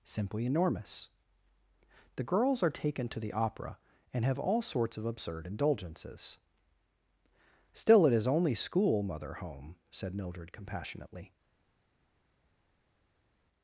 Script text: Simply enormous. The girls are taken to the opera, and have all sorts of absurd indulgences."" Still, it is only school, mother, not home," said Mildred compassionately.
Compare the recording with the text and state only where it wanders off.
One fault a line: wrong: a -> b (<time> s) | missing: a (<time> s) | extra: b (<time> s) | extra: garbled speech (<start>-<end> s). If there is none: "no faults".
missing: not (9.3 s)